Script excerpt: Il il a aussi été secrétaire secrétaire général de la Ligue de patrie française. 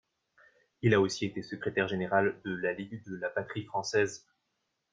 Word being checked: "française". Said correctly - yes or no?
yes